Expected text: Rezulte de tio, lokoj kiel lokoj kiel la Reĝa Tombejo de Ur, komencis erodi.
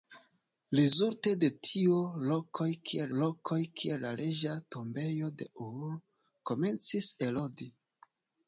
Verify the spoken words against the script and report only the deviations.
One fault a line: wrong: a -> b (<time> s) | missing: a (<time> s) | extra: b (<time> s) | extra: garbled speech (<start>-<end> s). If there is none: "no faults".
no faults